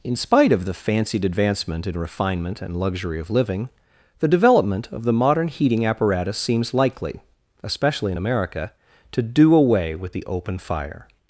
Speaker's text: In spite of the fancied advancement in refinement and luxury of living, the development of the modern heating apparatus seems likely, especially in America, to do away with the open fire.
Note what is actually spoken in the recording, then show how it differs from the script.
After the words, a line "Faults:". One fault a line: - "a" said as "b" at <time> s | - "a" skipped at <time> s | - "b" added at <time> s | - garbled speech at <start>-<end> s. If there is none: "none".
In spite of the fancied advancement in refinement and luxury of living, the development of the modern heating apparatus seems likely, especially in America, to do away with the open fire.
Faults:
none